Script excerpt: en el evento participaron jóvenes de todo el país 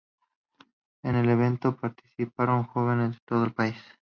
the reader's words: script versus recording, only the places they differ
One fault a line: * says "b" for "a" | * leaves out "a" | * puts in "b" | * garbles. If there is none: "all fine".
all fine